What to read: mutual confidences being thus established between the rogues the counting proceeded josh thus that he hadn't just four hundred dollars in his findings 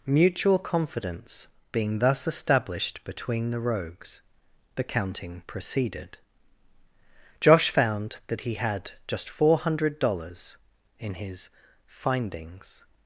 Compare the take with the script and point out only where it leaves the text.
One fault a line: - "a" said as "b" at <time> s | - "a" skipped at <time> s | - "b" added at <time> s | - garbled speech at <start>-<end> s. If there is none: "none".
- "confidences" said as "confidence" at 0.6 s
- "thus" said as "found" at 7.7 s
- "hadn't" said as "had" at 8.5 s